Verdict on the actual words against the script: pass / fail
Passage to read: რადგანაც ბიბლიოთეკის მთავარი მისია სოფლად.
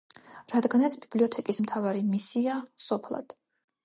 pass